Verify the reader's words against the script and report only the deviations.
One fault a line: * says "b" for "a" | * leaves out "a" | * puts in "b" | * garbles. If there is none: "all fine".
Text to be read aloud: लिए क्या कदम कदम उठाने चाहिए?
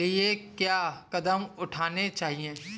* leaves out "कदम"